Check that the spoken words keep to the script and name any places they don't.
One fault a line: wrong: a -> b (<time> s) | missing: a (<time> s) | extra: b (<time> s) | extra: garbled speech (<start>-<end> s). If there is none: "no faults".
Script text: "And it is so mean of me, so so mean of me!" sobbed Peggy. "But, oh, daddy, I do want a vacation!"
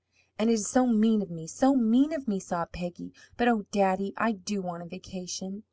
missing: so (1.8 s)